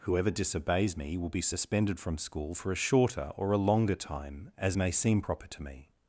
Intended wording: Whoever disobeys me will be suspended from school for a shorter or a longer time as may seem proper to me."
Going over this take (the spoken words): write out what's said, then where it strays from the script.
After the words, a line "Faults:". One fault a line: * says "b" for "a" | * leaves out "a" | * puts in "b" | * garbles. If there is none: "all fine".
Whoever disobeys me will be suspended from school for a shorter or a longer time as may seem proper to me."
Faults:
all fine